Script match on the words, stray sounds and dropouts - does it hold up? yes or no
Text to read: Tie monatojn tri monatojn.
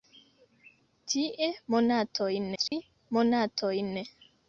no